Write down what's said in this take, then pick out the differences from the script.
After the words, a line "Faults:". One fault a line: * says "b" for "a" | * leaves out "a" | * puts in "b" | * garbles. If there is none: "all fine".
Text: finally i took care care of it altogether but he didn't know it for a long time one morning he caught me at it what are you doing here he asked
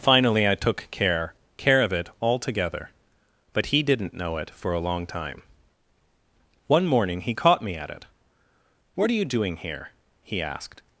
finally i took care care of it altogether but he didn't know it for a long time one morning he caught me at it what are you doing here he asked
Faults:
all fine